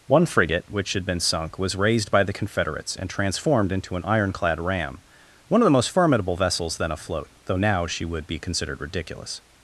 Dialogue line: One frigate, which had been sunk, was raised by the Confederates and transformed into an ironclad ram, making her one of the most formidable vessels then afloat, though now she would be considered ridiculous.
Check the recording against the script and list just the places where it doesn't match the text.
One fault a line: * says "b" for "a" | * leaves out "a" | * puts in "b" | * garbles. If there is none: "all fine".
* leaves out "making her"